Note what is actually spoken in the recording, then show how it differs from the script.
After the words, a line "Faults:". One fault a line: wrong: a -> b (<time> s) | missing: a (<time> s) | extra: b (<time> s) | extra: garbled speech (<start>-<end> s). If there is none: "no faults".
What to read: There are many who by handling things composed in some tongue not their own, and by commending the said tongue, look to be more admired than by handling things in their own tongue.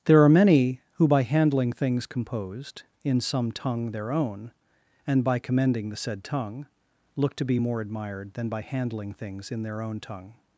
There are many who by handling things composed in some tongue their own, and by commending the said tongue, look to be more admired than by handling things in their own tongue.
Faults:
missing: not (3.9 s)